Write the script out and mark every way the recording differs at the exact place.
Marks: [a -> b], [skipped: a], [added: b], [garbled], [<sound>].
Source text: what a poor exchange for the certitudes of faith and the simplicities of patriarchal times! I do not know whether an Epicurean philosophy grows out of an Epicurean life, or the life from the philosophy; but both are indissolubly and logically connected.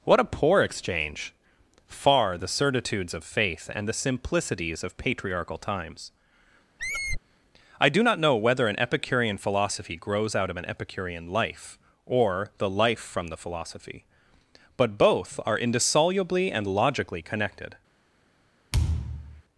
what a poor exchange [for -> far] the certitudes of faith and the simplicities of patriarchal times! [squeak] I do not know whether an Epicurean philosophy grows out of an Epicurean life, or the life from the philosophy; but both are indissolubly and logically connected. [thud]